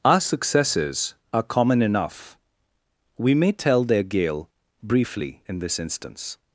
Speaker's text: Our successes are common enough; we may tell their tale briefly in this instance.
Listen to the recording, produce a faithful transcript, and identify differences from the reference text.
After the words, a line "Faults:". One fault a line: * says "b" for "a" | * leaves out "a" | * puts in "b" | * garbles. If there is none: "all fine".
Our successes are common enough; we may tell their gale briefly in this instance.
Faults:
* says "gale" for "tale"